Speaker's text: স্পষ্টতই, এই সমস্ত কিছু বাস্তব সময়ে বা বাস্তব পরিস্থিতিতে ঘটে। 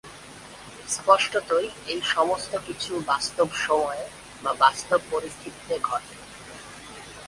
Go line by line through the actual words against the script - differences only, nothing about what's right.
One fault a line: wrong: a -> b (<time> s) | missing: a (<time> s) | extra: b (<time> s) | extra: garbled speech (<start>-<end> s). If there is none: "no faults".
no faults